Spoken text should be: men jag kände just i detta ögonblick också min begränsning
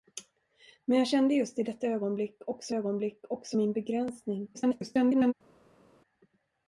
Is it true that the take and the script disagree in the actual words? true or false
true